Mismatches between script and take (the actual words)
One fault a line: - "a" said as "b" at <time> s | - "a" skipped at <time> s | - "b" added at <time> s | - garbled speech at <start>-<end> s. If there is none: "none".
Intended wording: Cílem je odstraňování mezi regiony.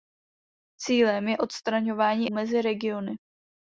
none